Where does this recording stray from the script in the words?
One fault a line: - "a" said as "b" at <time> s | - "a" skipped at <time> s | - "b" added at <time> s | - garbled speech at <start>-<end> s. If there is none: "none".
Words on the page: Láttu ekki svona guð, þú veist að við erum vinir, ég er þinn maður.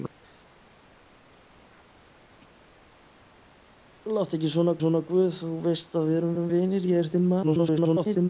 - "svona" added at 4.8 s
- "erum" added at 6.3 s
- garbled speech at 7.4-8.3 s